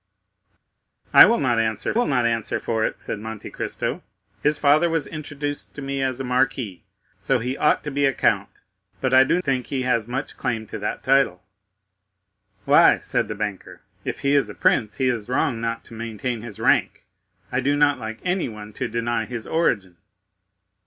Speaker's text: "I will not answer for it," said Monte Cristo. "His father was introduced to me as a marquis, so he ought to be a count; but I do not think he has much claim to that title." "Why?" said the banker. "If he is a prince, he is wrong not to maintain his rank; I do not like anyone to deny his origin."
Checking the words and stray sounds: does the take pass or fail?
fail